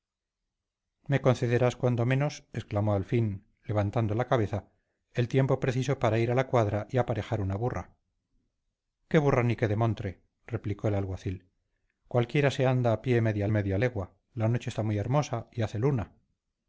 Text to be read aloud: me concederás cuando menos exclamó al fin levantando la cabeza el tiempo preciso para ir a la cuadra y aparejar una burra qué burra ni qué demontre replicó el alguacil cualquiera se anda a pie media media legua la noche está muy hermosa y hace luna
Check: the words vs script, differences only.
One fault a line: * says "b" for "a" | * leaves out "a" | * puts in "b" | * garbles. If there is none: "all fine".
all fine